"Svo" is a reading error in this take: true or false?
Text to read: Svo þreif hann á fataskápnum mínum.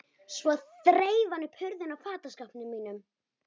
false